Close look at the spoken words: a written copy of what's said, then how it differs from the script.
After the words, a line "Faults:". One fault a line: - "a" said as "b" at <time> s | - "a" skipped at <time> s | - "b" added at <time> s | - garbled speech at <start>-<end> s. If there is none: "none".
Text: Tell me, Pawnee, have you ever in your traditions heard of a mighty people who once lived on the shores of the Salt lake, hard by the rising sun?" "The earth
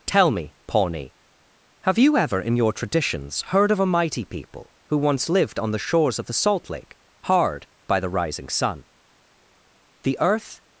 Tell me, Pawnee, have you ever in your traditions heard of a mighty people who once lived on the shores of the Salt lake, hard by the rising sun?" "The earth
Faults:
none